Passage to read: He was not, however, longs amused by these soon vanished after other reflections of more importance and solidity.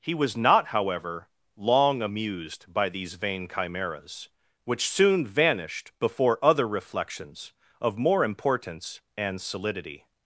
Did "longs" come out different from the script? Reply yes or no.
yes